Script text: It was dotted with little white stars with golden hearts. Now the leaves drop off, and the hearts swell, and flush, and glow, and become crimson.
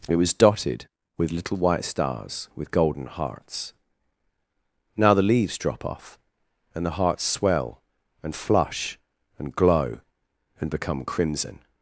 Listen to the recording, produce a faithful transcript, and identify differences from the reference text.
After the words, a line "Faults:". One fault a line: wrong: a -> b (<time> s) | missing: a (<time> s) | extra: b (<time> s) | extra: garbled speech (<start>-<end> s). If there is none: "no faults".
It was dotted with little white stars with golden hearts. Now the leaves drop off, and the hearts swell, and flush, and glow, and become crimson.
Faults:
no faults